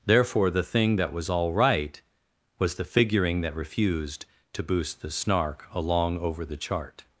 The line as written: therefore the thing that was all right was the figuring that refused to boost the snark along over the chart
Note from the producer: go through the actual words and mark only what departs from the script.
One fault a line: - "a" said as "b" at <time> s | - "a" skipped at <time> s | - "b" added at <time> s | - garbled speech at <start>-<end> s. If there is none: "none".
none